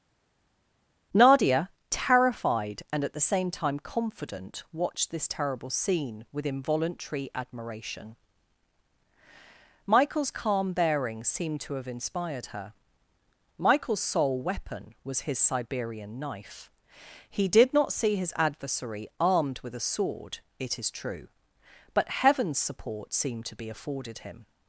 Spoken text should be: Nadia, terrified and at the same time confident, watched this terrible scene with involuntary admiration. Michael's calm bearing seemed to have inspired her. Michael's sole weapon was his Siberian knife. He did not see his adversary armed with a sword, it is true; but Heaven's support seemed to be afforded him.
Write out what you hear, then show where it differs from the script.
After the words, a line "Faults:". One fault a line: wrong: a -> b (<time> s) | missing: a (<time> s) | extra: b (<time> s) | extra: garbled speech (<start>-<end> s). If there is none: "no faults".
Nadia, terrified and at the same time confident, watched this terrible scene with involuntary admiration. Michael's calm bearing seemed to have inspired her. Michael's sole weapon was his Siberian knife. He did not see his adversary armed with a sword, it is true; but Heaven's support seemed to be afforded him.
Faults:
no faults